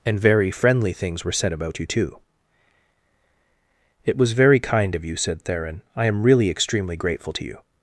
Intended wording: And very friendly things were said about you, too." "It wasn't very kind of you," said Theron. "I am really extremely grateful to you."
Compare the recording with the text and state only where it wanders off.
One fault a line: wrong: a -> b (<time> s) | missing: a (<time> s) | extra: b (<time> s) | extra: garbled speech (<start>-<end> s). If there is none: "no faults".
wrong: wasn't -> was (4.2 s)